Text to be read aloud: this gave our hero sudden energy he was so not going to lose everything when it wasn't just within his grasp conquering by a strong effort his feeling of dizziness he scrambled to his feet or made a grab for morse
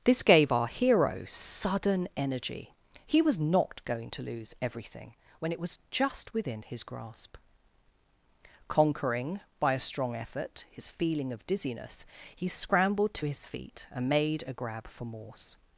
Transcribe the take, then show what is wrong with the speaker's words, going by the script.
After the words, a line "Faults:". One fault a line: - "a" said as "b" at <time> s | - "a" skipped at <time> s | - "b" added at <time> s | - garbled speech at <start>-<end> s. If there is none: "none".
this gave our hero sudden energy he was not going to lose everything when it was just within his grasp conquering by a strong effort his feeling of dizziness he scrambled to his feet and made a grab for morse
Faults:
- "so" skipped at 3.4 s
- "wasn't" said as "was" at 5.6 s
- "or" said as "and" at 13.9 s